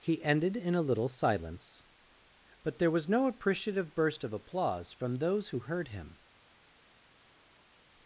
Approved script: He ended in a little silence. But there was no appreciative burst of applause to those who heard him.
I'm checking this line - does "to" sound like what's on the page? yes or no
no